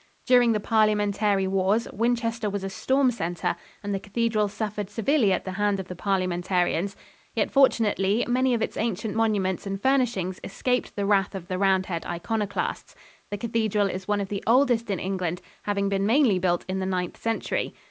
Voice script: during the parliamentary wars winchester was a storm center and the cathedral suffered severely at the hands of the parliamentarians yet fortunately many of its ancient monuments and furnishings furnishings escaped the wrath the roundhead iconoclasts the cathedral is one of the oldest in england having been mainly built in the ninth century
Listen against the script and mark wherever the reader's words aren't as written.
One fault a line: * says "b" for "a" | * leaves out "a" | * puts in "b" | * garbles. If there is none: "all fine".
* leaves out "furnishings"
* puts in "of"